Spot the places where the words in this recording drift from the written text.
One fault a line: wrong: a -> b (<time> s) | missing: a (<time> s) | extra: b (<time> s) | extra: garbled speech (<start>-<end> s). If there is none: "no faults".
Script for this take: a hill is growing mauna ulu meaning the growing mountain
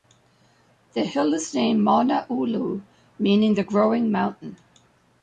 wrong: a -> the (0.9 s)
wrong: growing -> named (1.5 s)